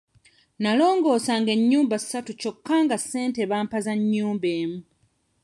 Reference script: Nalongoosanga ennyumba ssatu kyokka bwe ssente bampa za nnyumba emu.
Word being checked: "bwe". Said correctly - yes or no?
no